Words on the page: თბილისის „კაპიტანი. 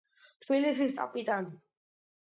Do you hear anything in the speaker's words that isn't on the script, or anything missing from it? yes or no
no